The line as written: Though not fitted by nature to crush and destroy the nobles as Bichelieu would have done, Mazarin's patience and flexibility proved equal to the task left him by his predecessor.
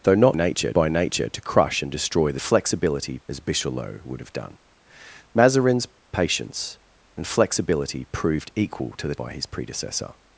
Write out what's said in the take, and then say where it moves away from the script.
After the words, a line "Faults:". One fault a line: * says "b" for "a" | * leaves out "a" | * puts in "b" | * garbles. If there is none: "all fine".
Though not nature by nature to crush and destroy the flexibility as Bichelieu would have done, Mazarin's patience and flexibility proved equal to the by his predecessor.
Faults:
* says "nature" for "fitted"
* says "flexibility" for "nobles"
* leaves out "task left him"